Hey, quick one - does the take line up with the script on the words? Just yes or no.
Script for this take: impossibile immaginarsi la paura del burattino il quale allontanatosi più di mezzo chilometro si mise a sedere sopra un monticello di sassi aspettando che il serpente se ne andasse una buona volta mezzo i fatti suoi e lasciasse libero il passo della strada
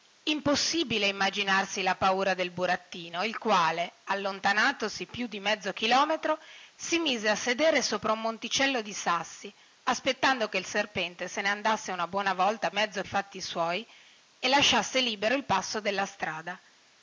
yes